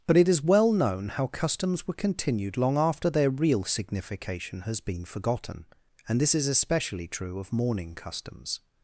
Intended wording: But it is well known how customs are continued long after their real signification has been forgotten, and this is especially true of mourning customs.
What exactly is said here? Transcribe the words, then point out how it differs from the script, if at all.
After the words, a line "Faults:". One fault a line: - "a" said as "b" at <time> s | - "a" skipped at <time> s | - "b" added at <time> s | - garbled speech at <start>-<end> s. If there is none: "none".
But it is well known how customs were continued long after their real signification has been forgotten, and this is especially true of mourning customs.
Faults:
- "are" said as "were" at 1.9 s